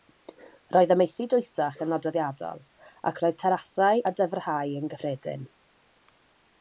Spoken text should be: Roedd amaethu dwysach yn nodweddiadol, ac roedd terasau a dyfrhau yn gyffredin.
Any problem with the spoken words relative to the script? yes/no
no